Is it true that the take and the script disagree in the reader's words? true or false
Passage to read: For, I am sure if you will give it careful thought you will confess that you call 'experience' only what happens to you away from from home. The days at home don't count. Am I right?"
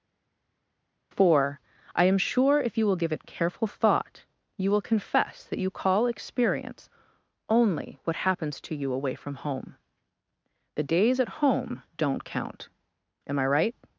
true